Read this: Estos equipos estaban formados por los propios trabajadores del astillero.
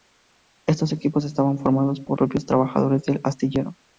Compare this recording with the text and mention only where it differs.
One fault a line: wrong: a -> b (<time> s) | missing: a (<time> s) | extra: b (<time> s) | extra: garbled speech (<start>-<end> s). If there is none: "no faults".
missing: los (2.2 s)